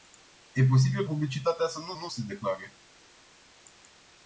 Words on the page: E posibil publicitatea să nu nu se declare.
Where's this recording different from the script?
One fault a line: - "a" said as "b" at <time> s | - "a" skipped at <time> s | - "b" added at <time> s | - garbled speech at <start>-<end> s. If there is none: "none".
none